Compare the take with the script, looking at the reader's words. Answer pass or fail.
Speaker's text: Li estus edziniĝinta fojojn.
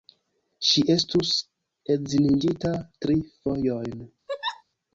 fail